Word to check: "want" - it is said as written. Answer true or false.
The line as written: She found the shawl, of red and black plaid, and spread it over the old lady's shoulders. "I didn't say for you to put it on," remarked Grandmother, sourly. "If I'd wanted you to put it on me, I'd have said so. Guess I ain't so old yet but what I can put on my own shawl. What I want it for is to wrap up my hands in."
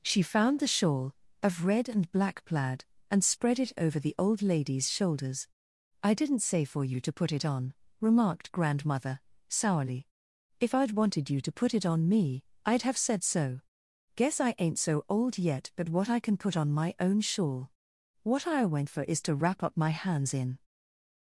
false